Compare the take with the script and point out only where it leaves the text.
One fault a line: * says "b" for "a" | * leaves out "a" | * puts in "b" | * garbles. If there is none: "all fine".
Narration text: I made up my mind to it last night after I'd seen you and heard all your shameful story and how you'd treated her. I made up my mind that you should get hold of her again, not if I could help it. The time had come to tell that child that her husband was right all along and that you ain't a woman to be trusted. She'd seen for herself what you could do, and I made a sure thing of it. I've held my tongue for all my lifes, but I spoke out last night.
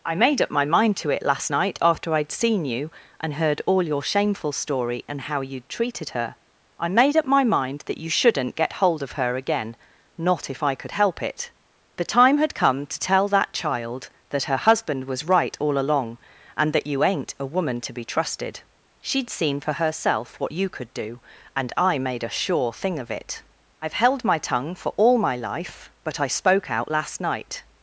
* says "shouldn't" for "should"
* says "life" for "lifes"